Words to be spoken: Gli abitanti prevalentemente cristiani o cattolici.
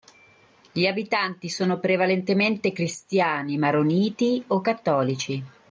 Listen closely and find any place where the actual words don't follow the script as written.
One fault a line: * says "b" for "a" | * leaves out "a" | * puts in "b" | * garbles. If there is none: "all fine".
* puts in "sono"
* puts in "maroniti"